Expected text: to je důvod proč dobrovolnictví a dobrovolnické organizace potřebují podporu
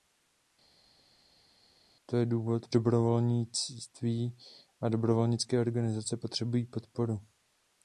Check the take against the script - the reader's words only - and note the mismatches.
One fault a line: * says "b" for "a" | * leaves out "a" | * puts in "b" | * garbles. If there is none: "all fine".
* leaves out "proč"